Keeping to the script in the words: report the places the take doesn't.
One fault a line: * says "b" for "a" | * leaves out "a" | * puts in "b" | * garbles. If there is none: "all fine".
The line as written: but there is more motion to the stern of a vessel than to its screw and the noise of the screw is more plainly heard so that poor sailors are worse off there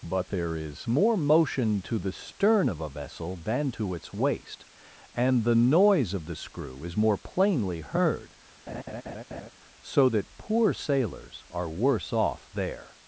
* says "waist" for "screw"